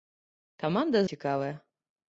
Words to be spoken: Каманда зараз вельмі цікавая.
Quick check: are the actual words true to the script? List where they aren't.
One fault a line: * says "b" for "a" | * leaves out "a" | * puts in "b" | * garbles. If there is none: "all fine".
* leaves out "зараз вельмі"